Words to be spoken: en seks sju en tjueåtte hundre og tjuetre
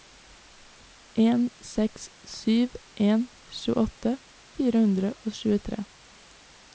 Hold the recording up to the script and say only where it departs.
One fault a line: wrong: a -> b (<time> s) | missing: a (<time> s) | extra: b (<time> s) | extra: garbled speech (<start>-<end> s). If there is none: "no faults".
extra: fire (4.6 s)